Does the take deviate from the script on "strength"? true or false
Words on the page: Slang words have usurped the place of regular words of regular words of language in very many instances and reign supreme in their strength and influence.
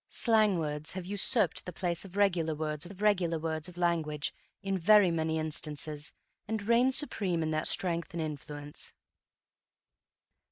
false